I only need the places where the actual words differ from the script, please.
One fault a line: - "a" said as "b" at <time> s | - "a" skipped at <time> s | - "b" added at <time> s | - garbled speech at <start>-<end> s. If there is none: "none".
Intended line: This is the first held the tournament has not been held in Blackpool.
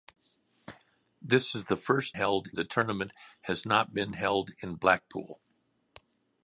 none